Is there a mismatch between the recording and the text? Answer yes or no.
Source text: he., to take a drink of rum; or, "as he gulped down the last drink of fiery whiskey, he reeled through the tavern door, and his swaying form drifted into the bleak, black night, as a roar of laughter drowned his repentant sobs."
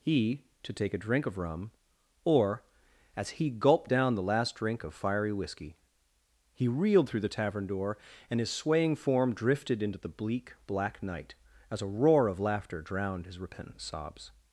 no